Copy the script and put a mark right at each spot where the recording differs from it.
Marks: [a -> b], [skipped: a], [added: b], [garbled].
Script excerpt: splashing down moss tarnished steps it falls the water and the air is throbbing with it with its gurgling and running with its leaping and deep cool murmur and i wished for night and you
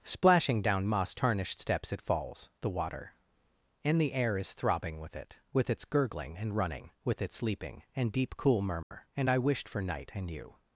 splashing down moss tarnished steps it falls the water and the air is throbbing with it with its gurgling and running with its leaping and deep cool murmur and i wished for night and you